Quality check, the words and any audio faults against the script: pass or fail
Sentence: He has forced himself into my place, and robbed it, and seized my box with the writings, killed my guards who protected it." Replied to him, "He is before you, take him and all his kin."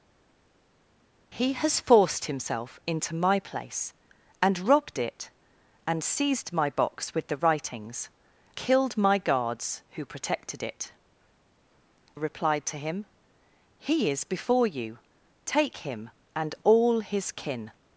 pass